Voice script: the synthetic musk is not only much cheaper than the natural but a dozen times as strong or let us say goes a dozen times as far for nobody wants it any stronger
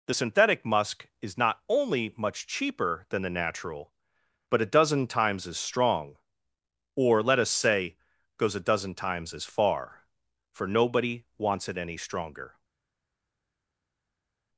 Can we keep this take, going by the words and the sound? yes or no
yes